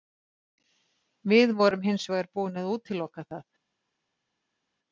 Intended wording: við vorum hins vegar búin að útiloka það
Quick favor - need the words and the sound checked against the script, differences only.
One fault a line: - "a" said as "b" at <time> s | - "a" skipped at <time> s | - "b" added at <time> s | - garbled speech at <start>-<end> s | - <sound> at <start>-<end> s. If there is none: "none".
none